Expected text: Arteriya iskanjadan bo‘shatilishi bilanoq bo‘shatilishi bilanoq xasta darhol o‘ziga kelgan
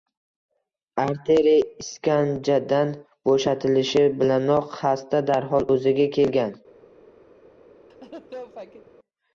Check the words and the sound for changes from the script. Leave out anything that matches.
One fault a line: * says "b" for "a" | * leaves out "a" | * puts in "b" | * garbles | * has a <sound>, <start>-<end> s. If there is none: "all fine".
* leaves out "bo‘shatilishi bilanoq"
* has a laugh, 7.9-8.9 s